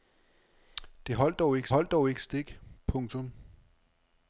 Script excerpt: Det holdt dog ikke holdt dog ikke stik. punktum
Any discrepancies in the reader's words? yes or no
no